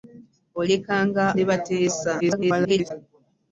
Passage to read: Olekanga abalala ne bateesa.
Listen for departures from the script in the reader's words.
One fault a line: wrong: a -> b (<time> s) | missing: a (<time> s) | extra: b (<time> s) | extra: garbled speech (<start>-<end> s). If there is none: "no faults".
missing: abalala (1.2 s)
extra: garbled speech (2.2-2.9 s)